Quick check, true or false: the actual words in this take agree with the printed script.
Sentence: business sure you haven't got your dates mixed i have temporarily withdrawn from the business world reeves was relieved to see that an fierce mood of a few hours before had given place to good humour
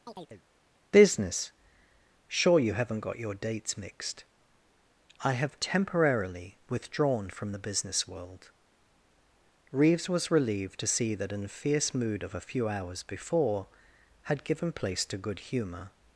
true